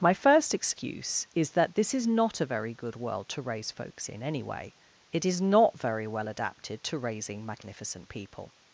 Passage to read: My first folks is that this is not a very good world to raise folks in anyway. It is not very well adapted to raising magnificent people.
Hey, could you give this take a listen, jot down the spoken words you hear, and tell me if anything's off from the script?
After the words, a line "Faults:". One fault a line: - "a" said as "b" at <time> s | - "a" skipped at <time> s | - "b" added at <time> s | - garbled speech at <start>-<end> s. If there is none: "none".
My first excuse is that this is not a very good world to raise folks in anyway. It is not very well adapted to raising magnificent people.
Faults:
- "folks" said as "excuse" at 0.5 s